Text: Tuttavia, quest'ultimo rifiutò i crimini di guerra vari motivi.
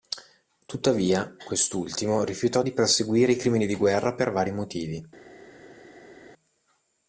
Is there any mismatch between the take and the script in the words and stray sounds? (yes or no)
yes